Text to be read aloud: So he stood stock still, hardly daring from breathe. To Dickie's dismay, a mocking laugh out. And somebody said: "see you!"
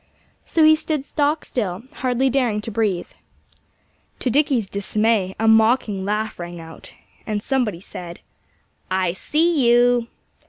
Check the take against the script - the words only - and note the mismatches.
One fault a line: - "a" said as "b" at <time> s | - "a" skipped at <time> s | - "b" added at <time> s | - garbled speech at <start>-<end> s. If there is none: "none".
- "from" said as "to" at 2.6 s
- "rang" added at 6.4 s
- "I" added at 8.9 s